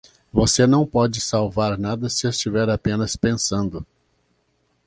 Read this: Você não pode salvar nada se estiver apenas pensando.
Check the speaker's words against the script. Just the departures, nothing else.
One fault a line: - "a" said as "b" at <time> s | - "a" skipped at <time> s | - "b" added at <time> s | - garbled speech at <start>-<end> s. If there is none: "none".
none